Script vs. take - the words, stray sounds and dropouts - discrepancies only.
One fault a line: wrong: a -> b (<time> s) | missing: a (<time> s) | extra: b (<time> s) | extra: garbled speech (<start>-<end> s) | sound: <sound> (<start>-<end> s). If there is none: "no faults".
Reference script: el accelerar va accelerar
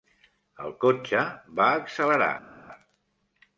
wrong: accelerar -> cotxe (0.8 s)